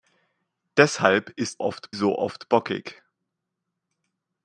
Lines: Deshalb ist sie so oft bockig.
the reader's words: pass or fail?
fail